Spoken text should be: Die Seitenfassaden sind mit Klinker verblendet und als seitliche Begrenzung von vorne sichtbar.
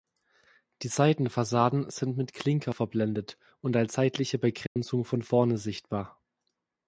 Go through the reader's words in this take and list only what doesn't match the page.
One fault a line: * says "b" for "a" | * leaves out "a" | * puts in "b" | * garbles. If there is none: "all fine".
all fine